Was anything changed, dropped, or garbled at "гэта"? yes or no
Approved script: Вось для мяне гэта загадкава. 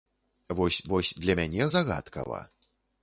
yes